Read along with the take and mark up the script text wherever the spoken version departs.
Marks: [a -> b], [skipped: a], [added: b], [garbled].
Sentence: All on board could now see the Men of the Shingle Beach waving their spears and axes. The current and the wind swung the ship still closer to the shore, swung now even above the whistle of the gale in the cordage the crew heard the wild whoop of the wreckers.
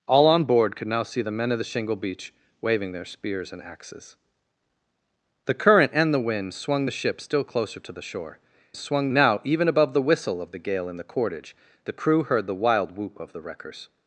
All on board could now see the Men of the Shingle Beach waving their spears and axes. The current and the wind swung the ship still closer to the shore, swung now even above the whistle of the gale in the cordage the crew heard the wild whoop of the wreckers.